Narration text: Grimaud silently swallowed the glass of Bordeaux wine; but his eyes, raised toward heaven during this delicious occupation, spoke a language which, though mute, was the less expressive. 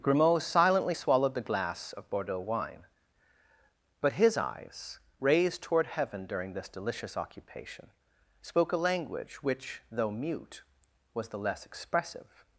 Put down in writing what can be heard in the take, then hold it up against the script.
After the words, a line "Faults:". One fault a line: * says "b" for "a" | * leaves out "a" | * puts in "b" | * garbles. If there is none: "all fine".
Grimaud silently swallowed the glass of Bordeaux wine; but his eyes, raised toward heaven during this delicious occupation, spoke a language which, though mute, was the less expressive.
Faults:
all fine